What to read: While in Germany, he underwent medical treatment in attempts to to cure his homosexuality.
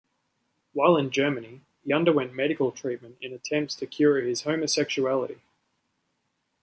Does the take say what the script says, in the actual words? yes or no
no